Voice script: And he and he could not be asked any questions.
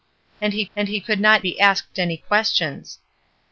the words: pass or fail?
pass